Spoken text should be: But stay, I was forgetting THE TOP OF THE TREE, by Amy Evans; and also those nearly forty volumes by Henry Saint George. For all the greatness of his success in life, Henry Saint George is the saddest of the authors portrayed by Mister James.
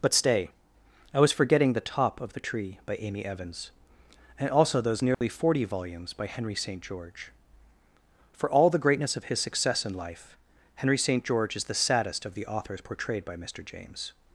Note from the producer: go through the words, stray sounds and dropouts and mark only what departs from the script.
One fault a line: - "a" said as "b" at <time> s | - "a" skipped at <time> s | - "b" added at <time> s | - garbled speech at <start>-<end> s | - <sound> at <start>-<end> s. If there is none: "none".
- dropout at 5.1-5.2 s